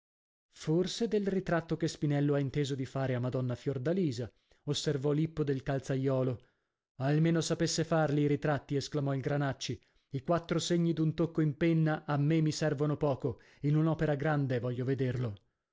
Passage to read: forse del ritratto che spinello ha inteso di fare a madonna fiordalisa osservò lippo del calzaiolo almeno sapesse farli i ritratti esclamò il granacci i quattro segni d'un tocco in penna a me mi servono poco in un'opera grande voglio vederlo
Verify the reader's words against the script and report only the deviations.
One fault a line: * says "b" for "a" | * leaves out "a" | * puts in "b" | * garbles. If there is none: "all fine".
all fine